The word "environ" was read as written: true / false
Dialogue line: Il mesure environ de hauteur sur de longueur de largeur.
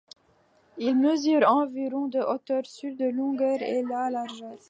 true